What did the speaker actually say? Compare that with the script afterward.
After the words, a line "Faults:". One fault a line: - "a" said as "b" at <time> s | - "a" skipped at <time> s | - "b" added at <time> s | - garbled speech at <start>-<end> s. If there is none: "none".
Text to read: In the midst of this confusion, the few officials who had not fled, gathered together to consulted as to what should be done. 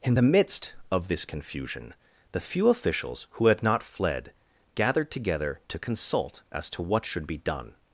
In the midst of this confusion, the few officials who had not fled, gathered together to consult as to what should be done.
Faults:
- "consulted" said as "consult" at 5.8 s